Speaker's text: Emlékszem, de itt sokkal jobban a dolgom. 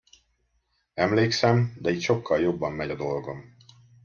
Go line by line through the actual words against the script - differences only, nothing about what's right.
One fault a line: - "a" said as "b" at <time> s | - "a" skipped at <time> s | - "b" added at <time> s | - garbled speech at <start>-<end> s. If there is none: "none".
- "megy" added at 2.7 s